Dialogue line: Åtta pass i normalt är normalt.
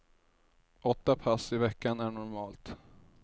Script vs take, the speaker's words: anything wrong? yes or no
yes